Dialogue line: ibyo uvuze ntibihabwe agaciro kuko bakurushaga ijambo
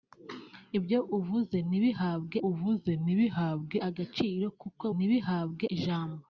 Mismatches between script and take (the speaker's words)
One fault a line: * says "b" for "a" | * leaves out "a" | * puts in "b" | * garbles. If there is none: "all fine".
* puts in "uvuze ntibihabwe"
* says "ntibihabwe" for "bakurushaga"